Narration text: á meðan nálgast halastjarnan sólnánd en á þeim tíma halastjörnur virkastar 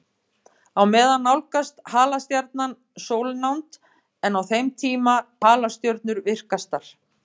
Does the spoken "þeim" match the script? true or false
true